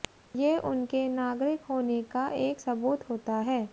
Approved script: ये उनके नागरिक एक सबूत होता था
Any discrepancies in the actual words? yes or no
yes